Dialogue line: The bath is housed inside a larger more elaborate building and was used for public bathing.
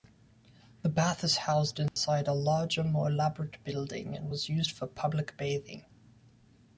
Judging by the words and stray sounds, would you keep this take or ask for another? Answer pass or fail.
fail